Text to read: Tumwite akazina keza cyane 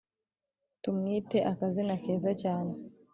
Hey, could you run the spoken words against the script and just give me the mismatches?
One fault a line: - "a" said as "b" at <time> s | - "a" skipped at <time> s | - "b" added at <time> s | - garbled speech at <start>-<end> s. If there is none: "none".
none